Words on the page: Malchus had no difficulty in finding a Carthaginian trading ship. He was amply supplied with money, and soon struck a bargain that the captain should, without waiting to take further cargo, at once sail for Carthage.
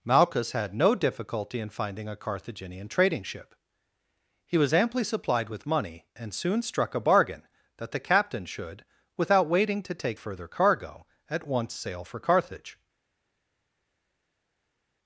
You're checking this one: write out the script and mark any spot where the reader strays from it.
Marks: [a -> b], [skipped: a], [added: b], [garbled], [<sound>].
Malchus had no difficulty in finding a Carthaginian trading ship. He was amply supplied with money, and soon struck a bargain that the captain should, without waiting to take further cargo, at once sail for Carthage.